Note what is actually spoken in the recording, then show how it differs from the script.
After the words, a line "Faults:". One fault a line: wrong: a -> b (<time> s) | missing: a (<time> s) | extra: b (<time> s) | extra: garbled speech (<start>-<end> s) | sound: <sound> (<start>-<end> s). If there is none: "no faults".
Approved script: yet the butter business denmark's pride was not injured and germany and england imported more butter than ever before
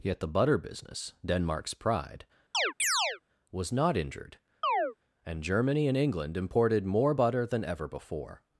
yet the butter business denmark's pride was not injured and germany and england imported more butter than ever before
Faults:
sound: chirp (2.5-3.2 s)
sound: chirp (4.6-4.9 s)